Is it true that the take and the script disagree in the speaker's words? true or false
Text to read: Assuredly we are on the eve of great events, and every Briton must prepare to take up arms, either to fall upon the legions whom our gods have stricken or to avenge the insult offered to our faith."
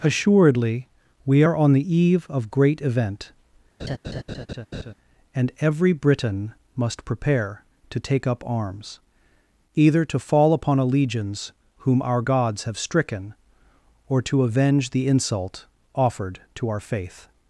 true